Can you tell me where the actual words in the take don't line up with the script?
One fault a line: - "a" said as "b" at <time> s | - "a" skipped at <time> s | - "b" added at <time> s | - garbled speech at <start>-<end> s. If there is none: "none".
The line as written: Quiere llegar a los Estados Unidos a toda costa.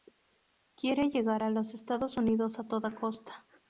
none